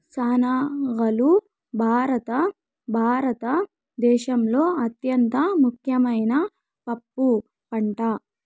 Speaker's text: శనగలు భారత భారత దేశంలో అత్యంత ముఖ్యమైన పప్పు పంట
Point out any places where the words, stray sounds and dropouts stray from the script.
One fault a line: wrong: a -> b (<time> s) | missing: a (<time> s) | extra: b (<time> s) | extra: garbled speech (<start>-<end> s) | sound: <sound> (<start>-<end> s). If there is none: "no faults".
no faults